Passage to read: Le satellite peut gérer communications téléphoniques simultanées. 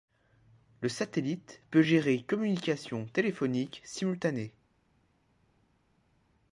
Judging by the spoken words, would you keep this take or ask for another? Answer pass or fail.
pass